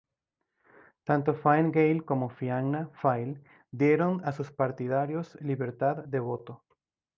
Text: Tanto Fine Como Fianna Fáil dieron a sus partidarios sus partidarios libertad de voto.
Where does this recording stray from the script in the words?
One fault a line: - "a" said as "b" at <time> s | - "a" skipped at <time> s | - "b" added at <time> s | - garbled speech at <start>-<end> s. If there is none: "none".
- "Gael" added at 1.7 s
- "sus partidarios" skipped at 5.4 s